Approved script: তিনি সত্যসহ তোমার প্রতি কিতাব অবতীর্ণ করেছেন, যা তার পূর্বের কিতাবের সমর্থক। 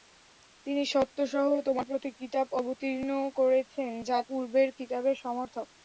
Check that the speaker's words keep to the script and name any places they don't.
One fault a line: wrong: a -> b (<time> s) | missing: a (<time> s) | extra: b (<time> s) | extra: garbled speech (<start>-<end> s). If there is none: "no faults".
missing: তার (4.2 s)